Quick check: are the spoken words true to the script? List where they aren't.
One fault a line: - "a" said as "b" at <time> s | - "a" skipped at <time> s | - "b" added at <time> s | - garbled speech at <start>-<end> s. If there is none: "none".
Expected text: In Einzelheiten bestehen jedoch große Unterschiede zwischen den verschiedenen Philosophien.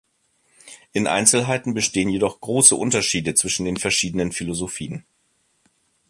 none